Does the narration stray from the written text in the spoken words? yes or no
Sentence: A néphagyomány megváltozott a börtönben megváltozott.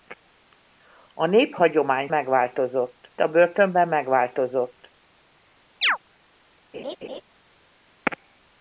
no